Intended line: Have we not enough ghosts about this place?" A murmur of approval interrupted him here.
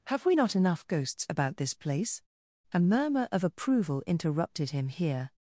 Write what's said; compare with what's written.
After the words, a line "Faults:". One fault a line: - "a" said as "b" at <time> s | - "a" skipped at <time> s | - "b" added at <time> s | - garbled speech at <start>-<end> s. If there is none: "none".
Have we not enough ghosts about this place?" A murmur of approval interrupted him here.
Faults:
none